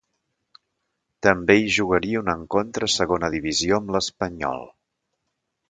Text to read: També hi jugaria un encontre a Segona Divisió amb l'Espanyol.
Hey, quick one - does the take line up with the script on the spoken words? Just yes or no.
yes